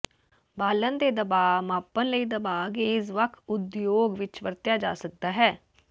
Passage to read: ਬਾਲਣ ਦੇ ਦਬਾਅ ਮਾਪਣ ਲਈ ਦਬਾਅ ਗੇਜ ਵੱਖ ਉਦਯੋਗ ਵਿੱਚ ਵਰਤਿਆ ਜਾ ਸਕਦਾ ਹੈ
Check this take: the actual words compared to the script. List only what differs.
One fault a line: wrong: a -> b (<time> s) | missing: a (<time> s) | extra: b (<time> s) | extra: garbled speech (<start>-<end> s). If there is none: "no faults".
no faults